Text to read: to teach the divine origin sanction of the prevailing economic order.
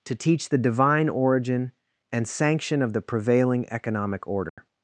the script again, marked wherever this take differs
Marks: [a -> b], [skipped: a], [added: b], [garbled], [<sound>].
to teach the divine origin [added: and] sanction of the prevailing economic order. [dropout]